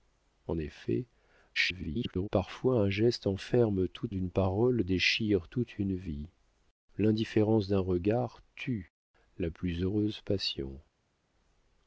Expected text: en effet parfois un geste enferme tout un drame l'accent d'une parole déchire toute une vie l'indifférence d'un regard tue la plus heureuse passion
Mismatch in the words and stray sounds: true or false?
true